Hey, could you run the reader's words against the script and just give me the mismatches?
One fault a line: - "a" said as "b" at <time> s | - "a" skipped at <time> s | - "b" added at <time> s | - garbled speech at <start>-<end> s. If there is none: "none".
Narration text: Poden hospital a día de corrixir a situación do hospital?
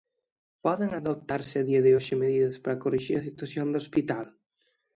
- "hospital" said as "adoptarse" at 1.0 s
- "hoxe medidas para" added at 2.0 s